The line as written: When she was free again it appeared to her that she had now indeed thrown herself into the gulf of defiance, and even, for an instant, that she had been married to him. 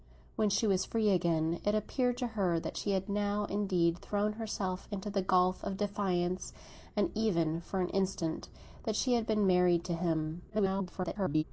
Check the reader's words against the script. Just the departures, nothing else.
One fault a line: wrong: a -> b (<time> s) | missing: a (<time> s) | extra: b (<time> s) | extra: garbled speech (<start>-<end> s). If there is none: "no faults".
extra: garbled speech (10.5-11.4 s)